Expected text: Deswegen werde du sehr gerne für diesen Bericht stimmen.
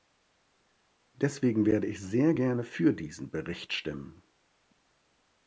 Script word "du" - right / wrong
wrong